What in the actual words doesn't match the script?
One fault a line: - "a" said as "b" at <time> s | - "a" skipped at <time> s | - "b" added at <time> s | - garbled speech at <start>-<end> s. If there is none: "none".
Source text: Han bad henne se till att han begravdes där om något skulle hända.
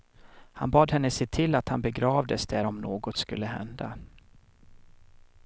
none